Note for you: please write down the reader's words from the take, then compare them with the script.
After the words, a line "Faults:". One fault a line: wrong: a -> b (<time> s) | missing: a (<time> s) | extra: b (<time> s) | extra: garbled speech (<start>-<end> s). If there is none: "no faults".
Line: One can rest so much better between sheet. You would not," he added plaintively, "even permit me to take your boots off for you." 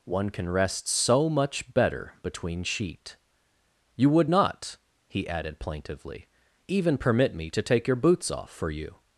One can rest so much better between sheet. You would not," he added plaintively, "even permit me to take your boots off for you."
Faults:
no faults